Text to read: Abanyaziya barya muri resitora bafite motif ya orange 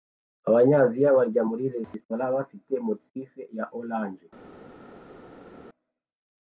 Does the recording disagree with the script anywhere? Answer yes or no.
no